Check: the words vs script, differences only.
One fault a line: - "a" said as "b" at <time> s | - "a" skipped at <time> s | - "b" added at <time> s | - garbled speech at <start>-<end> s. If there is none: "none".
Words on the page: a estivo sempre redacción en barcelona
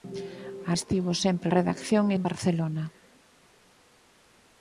none